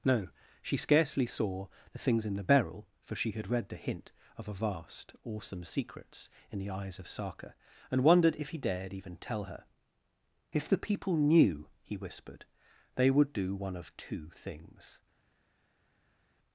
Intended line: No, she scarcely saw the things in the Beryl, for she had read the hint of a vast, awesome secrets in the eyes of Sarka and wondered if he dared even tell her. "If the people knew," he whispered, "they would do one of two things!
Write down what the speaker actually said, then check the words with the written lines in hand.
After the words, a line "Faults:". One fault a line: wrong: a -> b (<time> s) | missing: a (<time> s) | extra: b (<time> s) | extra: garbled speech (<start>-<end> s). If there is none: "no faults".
No, she scarcely saw the things in the Beryl, for she had read the hint of a vast, awesome secrets in the eyes of Sarka and wondered if he dared even tell her. "If the people knew," he whispered, "they would do one of two things!
Faults:
no faults